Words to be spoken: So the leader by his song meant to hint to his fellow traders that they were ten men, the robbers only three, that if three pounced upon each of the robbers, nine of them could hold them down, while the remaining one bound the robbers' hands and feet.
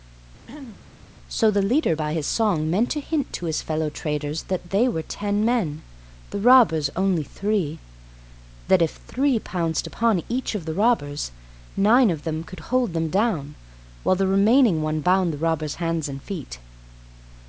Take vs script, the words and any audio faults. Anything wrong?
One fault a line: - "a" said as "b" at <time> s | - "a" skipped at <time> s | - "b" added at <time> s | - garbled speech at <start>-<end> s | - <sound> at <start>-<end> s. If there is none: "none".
- throat clearing at 0.5-0.8 s